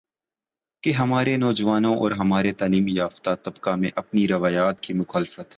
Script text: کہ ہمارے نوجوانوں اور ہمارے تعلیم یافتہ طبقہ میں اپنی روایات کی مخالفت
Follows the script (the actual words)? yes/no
yes